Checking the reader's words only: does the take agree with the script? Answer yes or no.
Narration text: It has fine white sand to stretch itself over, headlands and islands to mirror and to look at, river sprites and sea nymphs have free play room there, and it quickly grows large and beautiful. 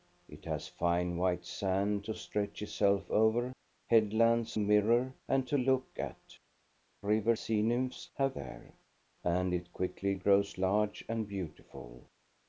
no